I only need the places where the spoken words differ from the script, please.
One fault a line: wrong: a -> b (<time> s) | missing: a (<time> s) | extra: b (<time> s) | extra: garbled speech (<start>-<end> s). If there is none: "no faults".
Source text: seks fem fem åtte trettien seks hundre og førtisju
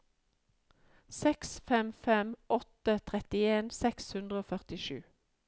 no faults